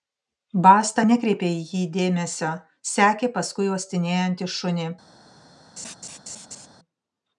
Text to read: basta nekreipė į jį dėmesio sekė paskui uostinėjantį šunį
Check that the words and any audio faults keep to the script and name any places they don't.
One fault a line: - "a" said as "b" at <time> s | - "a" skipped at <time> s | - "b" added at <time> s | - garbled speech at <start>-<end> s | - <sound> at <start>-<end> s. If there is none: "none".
- laugh at 5.8-6.7 s